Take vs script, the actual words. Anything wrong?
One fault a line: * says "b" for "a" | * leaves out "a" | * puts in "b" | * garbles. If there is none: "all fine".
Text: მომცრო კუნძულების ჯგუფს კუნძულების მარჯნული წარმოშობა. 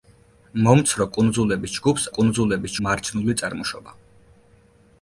all fine